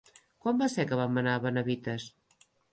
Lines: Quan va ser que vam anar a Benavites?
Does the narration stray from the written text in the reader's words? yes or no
no